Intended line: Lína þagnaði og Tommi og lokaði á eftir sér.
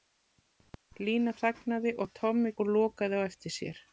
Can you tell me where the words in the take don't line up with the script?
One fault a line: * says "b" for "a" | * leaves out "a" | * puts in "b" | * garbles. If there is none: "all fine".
all fine